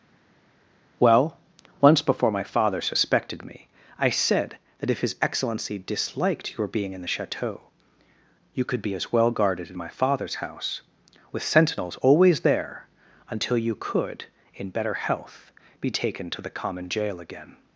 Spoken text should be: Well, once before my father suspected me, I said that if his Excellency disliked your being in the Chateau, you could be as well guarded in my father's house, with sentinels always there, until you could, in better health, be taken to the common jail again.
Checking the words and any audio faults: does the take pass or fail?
pass